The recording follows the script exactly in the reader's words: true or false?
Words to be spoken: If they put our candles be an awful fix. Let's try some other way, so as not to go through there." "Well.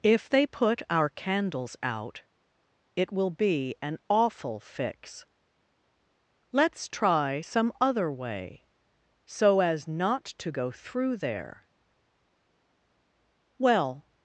false